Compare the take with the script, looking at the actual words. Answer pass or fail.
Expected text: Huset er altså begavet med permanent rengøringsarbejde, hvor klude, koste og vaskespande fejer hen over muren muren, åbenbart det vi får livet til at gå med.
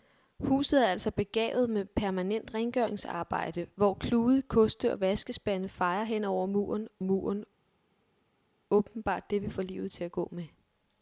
pass